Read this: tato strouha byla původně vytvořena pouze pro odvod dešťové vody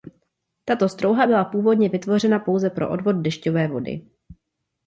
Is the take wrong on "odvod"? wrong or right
right